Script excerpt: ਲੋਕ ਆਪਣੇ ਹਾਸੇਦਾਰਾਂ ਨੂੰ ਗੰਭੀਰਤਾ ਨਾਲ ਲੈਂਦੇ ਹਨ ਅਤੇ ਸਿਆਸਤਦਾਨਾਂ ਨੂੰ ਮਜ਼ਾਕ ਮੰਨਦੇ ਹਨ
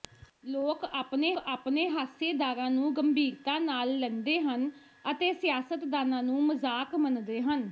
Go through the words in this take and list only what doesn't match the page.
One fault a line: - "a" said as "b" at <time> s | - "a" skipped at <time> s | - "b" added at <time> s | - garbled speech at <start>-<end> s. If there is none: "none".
- "ਆਪਣੇ" added at 1.4 s